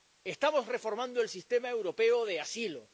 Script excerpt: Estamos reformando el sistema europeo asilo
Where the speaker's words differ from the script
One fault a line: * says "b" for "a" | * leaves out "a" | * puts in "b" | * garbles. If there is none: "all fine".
* puts in "de"